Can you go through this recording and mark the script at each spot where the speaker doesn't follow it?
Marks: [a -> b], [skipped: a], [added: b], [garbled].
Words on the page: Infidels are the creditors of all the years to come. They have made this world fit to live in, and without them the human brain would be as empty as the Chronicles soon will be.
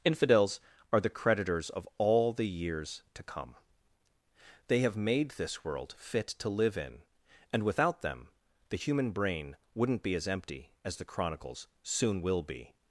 Infidels are the creditors of all the years to come. They have made this world fit to live in, and without them the human brain [would -> wouldn't] be as empty as the Chronicles soon will be.